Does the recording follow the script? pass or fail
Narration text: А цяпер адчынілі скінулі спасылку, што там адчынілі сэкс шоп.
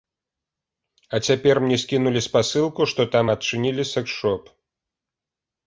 fail